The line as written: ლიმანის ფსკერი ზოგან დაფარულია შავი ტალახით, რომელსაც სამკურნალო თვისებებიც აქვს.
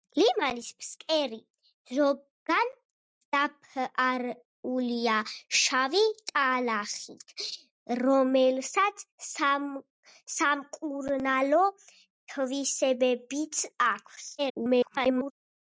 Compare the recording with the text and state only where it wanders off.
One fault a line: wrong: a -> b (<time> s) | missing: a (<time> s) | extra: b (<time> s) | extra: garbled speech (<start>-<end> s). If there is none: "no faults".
extra: garbled speech (14.4-15.3 s)